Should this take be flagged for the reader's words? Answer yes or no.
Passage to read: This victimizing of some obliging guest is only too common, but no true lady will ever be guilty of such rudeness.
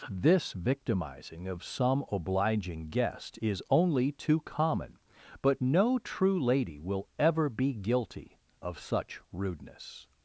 no